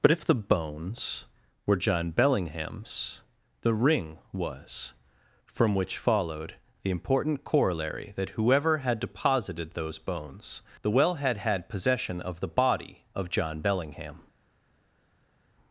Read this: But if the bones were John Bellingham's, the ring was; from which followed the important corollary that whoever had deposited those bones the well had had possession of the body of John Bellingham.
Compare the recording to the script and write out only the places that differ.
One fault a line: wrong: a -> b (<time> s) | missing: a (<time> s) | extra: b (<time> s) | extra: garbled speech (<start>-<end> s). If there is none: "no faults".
no faults